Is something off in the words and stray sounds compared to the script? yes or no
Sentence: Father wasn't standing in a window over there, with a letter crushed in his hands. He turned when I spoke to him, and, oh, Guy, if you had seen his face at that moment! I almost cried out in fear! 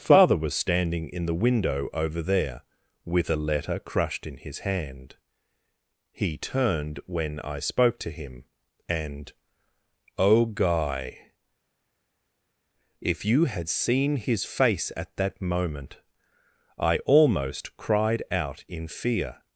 yes